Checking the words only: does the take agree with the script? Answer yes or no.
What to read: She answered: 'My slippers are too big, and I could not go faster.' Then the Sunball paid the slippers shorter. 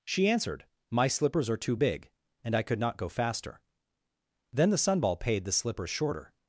yes